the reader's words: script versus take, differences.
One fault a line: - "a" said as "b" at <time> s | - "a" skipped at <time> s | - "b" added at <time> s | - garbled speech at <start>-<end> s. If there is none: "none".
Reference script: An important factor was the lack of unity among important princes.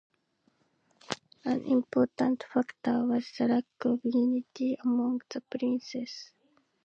- "important" said as "the" at 5.3 s